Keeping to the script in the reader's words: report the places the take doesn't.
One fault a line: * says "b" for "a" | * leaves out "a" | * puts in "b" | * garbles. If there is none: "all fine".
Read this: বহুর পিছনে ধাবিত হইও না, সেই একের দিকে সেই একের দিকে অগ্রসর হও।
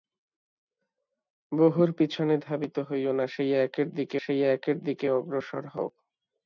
all fine